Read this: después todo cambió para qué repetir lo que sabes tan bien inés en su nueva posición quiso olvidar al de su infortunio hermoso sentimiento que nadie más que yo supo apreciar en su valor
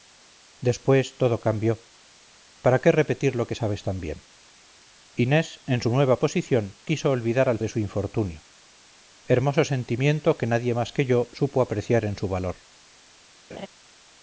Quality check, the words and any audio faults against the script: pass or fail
fail